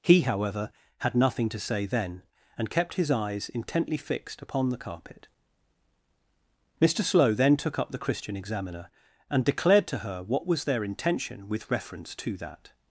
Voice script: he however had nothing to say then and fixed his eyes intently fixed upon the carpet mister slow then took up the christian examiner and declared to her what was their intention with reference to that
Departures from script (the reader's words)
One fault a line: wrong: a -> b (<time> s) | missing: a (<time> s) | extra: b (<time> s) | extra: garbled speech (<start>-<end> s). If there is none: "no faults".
wrong: fixed -> kept (2.7 s)